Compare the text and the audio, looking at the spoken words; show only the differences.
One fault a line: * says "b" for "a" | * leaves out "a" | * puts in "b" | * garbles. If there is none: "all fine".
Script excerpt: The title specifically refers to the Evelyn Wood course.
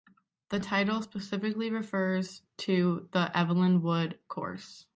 all fine